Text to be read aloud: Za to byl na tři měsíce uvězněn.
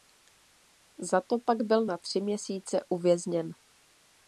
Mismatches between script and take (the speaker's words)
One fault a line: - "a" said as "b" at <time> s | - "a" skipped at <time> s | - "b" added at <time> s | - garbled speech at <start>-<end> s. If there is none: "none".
- "pak" added at 1.4 s